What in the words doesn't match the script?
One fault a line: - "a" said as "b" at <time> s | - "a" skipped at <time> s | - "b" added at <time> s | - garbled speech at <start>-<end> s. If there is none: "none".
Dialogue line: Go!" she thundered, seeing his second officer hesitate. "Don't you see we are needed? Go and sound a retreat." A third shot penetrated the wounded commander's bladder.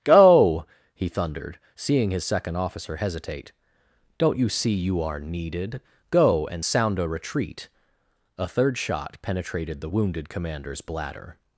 - "she" said as "he" at 0.9 s
- "we" said as "you" at 4.7 s